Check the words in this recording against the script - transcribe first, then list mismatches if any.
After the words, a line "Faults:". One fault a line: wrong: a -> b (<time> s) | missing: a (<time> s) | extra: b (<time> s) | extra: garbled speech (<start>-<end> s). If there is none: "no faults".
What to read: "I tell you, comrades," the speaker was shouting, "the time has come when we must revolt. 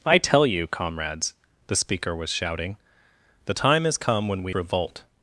"I tell you, comrades," the speaker was shouting, "the time has come when we revolt.
Faults:
missing: must (4.5 s)